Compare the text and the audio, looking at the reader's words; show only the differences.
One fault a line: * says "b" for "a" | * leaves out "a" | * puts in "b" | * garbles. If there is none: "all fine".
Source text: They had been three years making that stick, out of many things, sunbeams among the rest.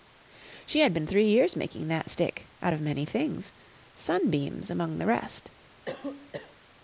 * says "She" for "They"